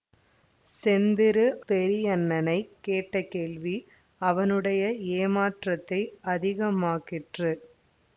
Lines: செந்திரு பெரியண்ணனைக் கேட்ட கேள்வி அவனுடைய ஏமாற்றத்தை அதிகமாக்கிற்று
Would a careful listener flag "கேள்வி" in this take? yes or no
no